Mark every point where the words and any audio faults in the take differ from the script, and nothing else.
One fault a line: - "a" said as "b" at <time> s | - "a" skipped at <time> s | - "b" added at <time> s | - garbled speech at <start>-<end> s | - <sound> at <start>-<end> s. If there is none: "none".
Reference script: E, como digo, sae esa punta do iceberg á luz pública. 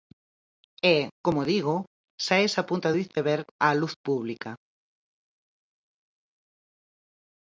none